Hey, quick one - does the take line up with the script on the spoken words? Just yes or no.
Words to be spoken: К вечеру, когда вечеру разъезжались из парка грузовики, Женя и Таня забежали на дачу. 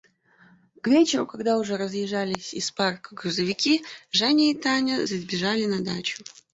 no